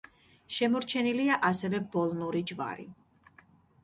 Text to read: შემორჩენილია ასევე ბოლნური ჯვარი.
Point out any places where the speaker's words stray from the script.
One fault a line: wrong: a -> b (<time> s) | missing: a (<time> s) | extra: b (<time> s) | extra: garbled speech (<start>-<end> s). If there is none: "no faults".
no faults